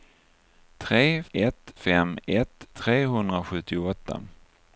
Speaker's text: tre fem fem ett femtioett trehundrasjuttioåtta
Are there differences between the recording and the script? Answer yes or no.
yes